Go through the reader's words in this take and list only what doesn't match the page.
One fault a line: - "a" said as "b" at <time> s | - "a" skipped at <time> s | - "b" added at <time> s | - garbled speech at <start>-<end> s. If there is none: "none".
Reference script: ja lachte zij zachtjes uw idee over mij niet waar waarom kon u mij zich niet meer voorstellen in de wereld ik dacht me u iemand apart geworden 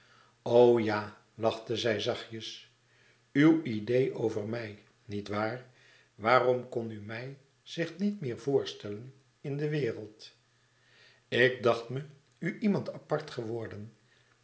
none